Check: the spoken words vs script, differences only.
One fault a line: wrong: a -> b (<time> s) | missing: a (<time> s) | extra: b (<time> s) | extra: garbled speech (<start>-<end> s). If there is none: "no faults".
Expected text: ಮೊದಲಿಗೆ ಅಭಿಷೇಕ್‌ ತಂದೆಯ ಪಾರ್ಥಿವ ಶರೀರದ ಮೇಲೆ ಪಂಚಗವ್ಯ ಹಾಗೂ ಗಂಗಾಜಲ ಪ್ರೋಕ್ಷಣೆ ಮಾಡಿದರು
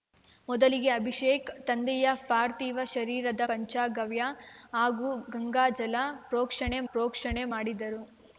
missing: ಮೇಲೆ (3.4 s)
extra: ಪ್ರೋಕ್ಷಣೆ (6.9 s)